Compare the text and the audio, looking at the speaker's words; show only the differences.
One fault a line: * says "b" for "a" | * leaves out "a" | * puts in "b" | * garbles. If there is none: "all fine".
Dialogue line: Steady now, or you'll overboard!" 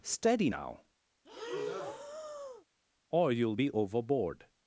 * puts in "be"